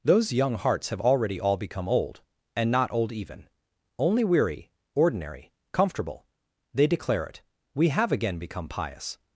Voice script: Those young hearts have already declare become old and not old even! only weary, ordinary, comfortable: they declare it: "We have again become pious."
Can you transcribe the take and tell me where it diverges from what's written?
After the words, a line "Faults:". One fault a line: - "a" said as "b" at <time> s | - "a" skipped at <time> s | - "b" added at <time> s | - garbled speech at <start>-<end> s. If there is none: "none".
Those young hearts have already all become old and not old even! only weary, ordinary, comfortable: they declare it: "We have again become pious."
Faults:
- "declare" said as "all" at 1.4 s